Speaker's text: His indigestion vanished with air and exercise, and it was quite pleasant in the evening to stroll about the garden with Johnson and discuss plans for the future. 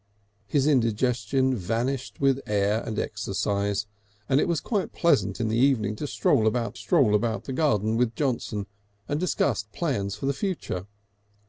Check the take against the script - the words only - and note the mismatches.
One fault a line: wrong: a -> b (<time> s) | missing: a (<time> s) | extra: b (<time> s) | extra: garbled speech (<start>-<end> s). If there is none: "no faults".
extra: stroll about (6.7 s)